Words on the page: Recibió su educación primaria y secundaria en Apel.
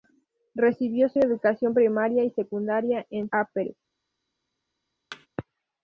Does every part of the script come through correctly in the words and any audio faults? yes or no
no